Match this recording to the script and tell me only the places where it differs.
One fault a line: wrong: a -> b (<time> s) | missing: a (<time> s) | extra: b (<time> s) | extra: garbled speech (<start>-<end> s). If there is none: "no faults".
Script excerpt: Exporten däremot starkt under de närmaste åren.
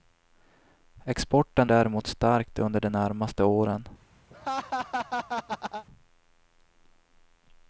no faults